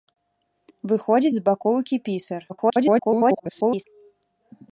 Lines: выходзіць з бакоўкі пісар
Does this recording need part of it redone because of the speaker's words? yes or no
yes